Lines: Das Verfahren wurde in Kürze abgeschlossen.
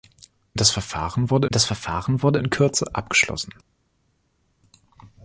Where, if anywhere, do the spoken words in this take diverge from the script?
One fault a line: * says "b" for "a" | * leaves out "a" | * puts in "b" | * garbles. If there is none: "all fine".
* puts in "das Verfahren wurde"